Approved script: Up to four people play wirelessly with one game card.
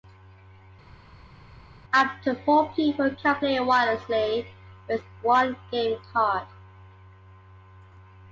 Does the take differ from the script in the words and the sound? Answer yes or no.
yes